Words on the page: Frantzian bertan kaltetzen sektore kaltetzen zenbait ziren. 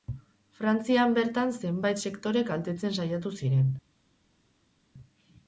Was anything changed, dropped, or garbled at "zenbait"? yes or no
yes